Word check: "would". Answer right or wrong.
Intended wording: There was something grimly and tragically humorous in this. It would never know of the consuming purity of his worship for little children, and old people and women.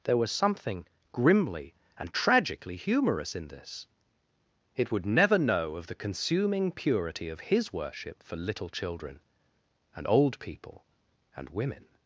right